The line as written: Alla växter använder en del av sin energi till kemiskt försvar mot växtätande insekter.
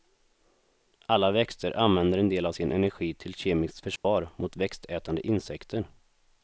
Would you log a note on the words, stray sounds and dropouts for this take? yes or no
yes